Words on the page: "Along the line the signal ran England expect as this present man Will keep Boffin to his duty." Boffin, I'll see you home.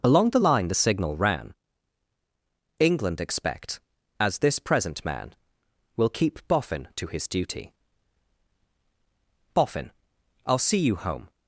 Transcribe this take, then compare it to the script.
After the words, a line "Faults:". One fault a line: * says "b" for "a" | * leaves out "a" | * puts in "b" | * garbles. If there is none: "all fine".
"Along the line the signal ran England expect as this present man Will keep Boffin to his duty." Boffin, I'll see you home.
Faults:
all fine